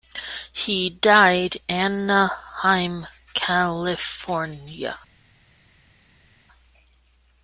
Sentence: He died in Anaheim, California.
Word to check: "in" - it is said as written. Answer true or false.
false